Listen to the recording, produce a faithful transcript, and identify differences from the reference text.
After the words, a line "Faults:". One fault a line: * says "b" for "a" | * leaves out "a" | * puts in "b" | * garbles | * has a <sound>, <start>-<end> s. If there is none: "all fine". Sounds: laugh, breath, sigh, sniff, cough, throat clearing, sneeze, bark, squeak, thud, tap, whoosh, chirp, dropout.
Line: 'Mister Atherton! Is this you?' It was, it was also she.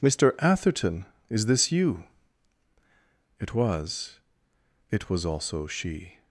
'Mister Atherton! Is this you?' It was, it was also she.
Faults:
all fine